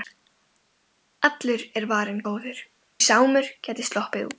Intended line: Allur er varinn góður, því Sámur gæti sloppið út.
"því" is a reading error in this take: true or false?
true